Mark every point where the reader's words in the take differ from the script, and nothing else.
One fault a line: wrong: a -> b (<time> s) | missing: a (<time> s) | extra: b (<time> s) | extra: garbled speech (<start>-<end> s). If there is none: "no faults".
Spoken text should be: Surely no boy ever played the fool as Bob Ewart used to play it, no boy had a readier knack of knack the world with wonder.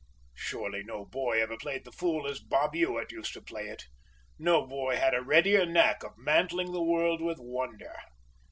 wrong: knack -> mantling (6.2 s)